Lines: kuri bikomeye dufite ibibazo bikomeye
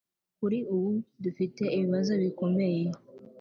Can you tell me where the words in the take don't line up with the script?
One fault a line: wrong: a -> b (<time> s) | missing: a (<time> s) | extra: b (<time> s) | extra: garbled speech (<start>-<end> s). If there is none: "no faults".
wrong: bikomeye -> ubu (0.7 s)